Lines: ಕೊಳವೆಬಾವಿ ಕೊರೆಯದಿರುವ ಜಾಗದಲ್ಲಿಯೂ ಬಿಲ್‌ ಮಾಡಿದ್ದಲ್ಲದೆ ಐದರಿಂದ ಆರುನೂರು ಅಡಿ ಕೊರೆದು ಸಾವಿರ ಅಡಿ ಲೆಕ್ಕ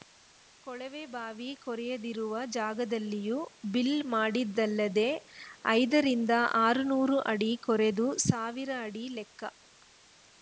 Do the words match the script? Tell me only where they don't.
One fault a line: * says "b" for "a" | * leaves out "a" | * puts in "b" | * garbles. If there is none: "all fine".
all fine